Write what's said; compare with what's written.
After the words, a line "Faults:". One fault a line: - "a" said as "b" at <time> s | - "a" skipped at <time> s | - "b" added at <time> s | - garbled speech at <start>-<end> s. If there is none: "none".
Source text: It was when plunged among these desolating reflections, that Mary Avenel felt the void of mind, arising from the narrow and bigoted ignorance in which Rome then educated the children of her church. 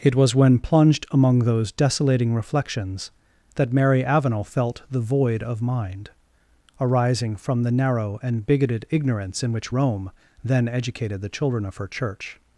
It was when plunged among those desolating reflections, that Mary Avenel felt the void of mind, arising from the narrow and bigoted ignorance in which Rome then educated the children of her church.
Faults:
- "these" said as "those" at 1.4 s